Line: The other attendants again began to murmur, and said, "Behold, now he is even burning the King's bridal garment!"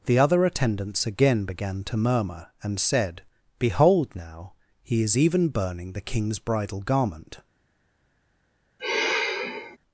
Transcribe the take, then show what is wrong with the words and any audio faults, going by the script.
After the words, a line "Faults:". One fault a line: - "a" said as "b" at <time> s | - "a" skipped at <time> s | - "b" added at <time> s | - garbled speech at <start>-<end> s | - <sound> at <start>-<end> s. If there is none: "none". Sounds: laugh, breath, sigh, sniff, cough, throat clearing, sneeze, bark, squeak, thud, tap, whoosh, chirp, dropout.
The other attendants again began to murmur, and said, "Behold, now he is even burning the King's bridal garment!"
Faults:
- sigh at 8.8-9.8 s